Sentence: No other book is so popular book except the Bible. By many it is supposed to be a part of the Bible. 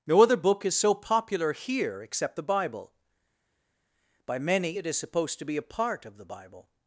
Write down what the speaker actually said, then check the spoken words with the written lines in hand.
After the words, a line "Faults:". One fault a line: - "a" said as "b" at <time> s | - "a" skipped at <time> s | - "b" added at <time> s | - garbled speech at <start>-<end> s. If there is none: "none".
No other book is so popular here except the Bible. By many it is supposed to be a part of the Bible.
Faults:
- "book" said as "here" at 1.5 s